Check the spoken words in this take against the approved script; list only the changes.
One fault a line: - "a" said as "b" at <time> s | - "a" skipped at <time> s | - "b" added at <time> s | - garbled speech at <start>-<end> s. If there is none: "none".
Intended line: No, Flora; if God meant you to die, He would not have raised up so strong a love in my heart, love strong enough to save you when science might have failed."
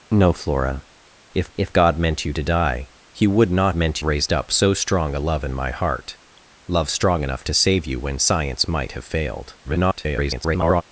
- "if" added at 1.5 s
- "have" said as "meant" at 3.8 s
- garbled speech at 9.6-10.8 s